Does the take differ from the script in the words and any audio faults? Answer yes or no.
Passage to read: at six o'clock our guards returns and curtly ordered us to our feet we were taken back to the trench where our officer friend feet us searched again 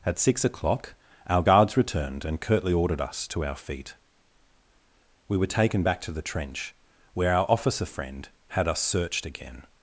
yes